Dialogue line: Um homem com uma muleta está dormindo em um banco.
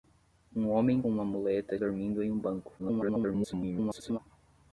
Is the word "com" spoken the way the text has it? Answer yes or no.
no